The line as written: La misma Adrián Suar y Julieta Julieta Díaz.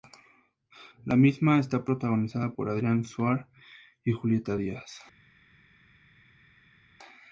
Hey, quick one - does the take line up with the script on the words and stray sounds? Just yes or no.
no